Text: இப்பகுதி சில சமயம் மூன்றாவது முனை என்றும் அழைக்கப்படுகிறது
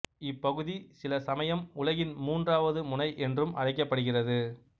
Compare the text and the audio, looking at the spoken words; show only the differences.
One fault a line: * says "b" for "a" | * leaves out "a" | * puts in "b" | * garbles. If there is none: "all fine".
* puts in "உலகின்"